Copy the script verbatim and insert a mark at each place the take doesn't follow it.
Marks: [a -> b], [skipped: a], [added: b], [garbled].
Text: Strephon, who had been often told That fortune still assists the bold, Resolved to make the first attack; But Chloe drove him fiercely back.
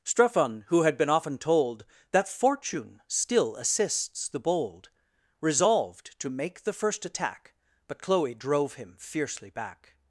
Strephon, who had been often told That fortune still assists the bold, Resolved to make the first attack; But Chloe drove him fiercely back.